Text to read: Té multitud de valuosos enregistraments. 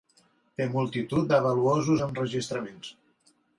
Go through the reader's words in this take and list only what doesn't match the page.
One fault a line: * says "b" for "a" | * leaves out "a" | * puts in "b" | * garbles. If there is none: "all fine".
all fine